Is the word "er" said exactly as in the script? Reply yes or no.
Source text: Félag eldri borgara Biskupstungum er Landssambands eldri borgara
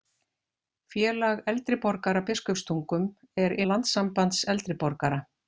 yes